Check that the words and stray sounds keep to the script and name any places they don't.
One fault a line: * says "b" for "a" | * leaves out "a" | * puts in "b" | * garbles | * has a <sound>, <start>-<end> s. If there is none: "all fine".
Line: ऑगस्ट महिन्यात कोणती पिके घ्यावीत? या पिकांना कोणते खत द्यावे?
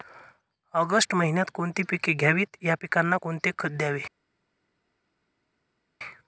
all fine